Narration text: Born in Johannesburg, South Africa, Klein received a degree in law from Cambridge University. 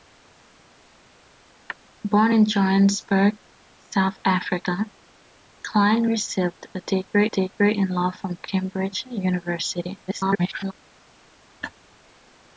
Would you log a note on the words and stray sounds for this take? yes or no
yes